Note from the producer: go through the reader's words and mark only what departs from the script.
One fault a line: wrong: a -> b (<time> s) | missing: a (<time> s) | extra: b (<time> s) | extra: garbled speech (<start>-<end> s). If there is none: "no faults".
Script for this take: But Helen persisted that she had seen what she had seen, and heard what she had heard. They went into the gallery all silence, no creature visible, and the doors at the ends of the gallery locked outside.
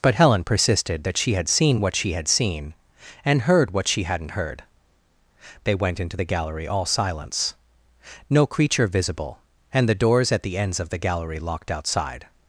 wrong: had -> hadn't (4.0 s)